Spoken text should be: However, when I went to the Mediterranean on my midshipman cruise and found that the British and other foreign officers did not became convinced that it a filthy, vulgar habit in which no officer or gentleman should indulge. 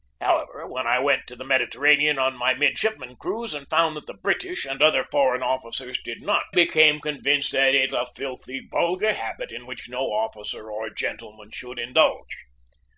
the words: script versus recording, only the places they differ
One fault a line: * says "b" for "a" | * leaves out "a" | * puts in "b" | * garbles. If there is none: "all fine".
all fine